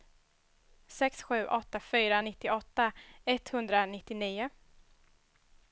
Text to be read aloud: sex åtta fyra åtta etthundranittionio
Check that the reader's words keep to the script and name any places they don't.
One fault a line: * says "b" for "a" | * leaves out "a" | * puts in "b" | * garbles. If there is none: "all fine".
* puts in "sju"
* says "nittioåtta" for "åtta"